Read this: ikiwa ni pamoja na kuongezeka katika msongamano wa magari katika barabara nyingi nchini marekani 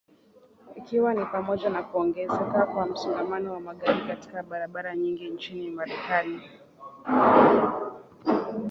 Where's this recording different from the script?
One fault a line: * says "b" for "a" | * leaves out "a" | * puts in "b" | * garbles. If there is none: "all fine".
* says "kwa" for "katika"